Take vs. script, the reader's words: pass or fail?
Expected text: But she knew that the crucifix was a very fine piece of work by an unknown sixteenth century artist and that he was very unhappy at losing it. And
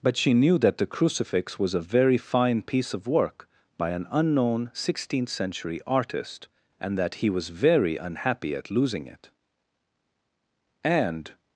pass